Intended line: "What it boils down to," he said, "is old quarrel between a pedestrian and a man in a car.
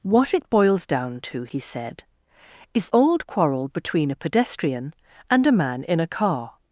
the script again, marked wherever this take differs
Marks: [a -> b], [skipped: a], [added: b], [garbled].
"What it boils down to," he said, "is old quarrel between a pedestrian and a man in a car.